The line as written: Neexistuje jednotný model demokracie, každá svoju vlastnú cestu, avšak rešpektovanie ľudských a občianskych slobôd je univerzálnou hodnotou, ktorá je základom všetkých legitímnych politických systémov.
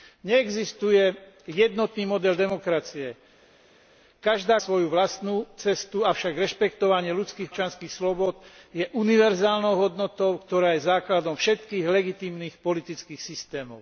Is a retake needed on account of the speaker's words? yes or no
no